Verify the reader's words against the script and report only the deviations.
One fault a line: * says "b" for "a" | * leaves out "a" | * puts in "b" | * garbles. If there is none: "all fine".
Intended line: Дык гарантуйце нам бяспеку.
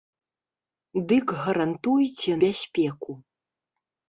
* leaves out "нам"